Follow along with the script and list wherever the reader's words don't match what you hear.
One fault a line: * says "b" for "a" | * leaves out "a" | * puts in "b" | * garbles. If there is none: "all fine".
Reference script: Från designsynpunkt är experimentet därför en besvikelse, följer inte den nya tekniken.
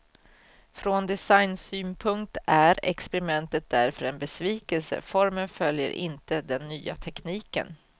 * puts in "formen"